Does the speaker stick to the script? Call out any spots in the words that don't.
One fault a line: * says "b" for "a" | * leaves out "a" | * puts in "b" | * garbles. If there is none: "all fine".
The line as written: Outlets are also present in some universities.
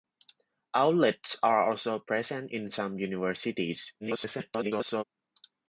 * garbles